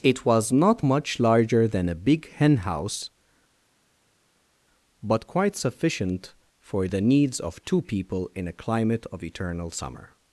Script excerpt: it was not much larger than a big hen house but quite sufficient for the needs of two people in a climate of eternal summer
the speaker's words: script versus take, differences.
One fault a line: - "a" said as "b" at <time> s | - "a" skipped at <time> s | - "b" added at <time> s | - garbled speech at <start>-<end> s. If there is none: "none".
none